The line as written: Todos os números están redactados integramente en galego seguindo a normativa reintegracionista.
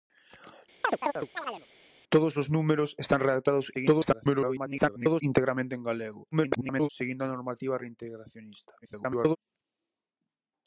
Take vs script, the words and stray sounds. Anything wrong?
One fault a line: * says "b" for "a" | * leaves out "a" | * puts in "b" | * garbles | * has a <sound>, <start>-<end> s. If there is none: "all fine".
* has a chirp, 0.8-1.7 s
* garbles
* garbles
* garbles